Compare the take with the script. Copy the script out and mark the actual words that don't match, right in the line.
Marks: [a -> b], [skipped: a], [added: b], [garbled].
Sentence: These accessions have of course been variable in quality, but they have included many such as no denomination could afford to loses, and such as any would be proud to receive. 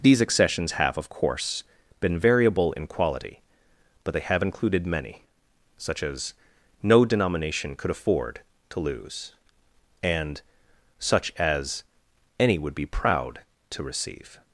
These accessions have of course been variable in quality, but they have included many such as no denomination could afford to [loses, -> lose] and such as any would be proud to receive.